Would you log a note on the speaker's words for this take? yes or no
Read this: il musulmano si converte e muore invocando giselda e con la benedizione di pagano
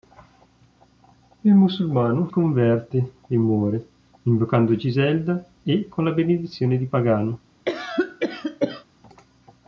yes